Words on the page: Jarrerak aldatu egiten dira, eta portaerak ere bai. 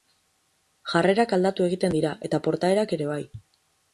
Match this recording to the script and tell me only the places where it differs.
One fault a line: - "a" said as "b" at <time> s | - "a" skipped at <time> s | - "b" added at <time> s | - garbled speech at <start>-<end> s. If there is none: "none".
none